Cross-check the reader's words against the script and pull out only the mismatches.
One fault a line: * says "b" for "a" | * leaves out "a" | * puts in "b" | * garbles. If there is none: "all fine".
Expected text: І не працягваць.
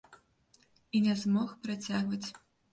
* puts in "змог"